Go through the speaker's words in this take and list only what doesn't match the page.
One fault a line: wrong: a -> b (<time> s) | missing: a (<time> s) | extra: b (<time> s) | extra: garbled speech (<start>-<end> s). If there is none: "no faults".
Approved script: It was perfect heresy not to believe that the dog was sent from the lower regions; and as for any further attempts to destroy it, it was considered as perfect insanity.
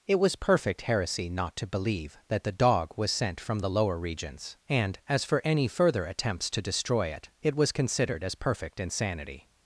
no faults